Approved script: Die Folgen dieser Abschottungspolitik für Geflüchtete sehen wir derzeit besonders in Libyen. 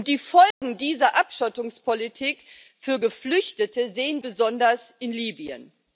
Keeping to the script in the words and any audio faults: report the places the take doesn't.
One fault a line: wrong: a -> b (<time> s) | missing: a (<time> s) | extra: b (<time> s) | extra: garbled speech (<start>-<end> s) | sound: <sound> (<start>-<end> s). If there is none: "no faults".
sound: dropout (0.5-0.6 s)
missing: wir derzeit (4.2 s)